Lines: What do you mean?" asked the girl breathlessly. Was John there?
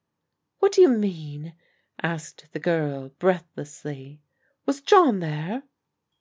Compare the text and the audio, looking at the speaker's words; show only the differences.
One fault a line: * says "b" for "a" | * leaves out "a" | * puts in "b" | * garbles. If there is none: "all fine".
all fine